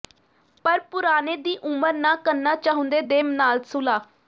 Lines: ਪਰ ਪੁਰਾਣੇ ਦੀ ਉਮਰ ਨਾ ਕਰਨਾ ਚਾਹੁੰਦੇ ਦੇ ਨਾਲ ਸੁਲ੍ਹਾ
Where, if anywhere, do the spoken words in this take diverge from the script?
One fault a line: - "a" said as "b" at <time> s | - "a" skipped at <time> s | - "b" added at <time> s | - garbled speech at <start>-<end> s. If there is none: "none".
none